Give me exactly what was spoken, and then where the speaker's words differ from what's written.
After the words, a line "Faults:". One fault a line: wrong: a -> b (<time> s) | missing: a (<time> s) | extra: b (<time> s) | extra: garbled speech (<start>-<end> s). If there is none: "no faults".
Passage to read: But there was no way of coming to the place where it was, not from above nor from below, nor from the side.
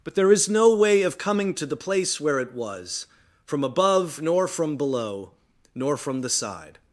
But there is no way of coming to the place where it was, from above nor from below, nor from the side.
Faults:
wrong: was -> is (0.3 s)
missing: not (3.1 s)